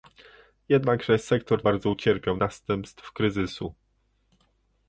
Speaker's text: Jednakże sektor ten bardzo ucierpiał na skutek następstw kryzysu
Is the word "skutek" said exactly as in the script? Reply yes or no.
no